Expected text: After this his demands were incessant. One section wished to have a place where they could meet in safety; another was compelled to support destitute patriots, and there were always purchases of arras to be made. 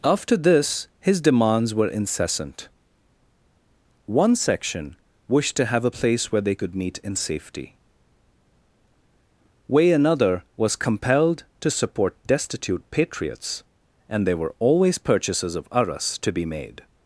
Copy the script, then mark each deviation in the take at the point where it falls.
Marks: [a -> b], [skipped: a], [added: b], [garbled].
After this his demands were incessant. One section wished to have a place where they could meet in safety; [added: way] another was compelled to support destitute patriots, and there were always purchases of arras to be made.